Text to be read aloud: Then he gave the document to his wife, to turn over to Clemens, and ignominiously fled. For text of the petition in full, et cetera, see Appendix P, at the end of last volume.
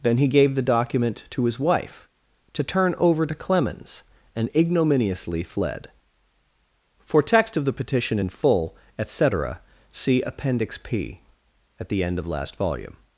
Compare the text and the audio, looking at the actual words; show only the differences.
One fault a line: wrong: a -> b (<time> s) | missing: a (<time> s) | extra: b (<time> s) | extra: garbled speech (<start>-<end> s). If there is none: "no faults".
no faults